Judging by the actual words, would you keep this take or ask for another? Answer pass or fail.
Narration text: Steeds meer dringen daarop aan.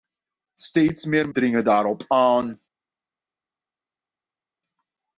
pass